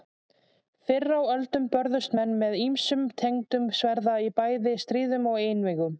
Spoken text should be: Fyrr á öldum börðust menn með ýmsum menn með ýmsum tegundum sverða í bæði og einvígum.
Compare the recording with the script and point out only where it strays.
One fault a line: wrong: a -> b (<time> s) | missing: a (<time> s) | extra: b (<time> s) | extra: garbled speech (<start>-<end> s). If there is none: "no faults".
missing: menn með ýmsum (3.0 s)
extra: stríðum (4.9 s)